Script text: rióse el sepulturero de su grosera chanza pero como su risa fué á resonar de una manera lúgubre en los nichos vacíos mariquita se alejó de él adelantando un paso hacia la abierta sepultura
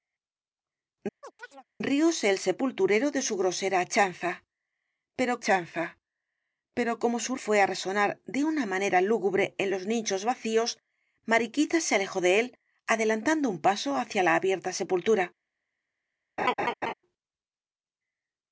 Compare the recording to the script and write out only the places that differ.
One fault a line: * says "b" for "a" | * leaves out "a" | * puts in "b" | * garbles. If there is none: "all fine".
* puts in "chanza pero"
* leaves out "risa"